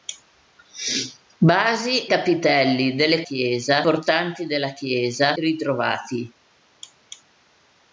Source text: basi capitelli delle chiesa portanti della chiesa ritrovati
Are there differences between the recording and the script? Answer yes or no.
no